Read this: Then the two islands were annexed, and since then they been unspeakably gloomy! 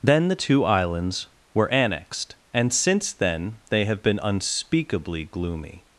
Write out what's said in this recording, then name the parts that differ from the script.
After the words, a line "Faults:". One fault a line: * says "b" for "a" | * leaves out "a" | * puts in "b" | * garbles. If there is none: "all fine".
Then the two islands were annexed, and since then they have been unspeakably gloomy!
Faults:
* puts in "have"